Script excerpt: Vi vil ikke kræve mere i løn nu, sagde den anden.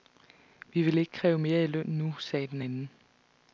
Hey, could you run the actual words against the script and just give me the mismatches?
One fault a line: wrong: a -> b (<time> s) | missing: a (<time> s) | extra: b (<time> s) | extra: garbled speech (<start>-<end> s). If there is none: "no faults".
no faults